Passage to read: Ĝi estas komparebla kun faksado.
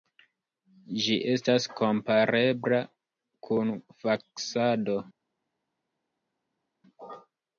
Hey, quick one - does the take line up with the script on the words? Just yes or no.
yes